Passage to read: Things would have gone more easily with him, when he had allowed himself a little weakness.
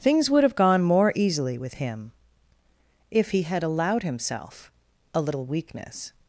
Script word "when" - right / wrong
wrong